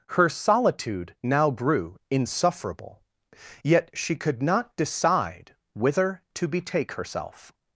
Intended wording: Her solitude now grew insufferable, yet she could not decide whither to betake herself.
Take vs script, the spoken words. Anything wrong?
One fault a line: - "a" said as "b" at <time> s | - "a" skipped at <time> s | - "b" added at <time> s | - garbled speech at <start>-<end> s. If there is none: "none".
none